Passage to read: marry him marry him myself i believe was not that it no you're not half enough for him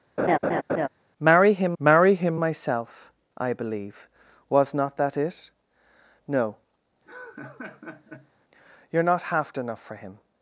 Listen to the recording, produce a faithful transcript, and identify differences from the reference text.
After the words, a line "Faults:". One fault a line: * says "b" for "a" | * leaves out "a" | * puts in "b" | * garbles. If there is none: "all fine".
marry him marry him myself i believe was not that it no you're not half enough for him
Faults:
all fine